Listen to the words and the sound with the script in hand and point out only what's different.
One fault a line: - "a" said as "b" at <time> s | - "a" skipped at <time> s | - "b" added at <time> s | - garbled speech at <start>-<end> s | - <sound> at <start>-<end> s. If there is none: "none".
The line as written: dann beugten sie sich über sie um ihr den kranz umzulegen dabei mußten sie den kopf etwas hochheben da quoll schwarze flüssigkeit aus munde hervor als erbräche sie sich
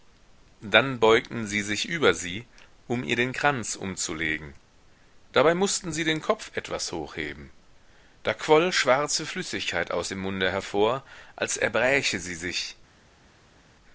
- "dem" added at 10.1 s